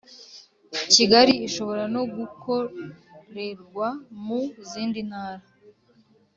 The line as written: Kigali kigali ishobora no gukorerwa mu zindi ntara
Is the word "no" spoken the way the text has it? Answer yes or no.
yes